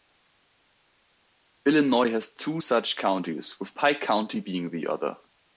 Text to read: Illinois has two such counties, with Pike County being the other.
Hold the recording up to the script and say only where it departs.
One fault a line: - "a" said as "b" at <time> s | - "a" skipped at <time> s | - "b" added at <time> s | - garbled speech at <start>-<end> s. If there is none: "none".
none